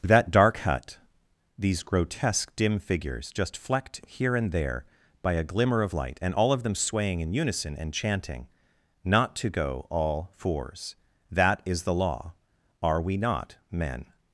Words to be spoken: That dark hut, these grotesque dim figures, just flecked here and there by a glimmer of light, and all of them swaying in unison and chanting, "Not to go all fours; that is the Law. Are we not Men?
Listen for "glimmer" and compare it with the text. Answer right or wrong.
right